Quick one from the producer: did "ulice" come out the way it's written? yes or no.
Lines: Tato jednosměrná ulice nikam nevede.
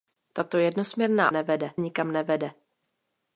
no